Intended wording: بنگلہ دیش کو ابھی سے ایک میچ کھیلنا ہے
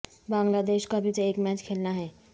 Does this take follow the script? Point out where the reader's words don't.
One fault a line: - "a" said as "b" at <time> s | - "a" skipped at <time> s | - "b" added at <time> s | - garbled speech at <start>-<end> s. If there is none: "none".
none